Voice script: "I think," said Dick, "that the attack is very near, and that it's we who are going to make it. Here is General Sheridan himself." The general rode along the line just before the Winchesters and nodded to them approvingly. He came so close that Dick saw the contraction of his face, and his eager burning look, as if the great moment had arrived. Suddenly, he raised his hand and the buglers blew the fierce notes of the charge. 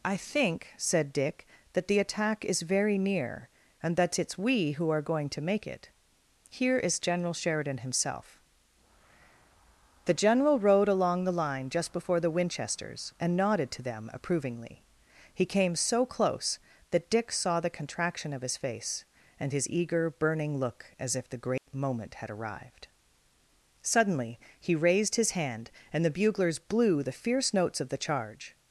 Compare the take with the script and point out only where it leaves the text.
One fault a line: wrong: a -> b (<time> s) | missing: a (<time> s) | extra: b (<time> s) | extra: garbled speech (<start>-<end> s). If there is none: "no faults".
no faults